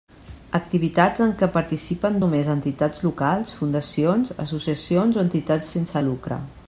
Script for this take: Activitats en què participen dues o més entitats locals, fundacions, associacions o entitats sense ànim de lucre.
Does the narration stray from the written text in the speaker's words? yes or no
yes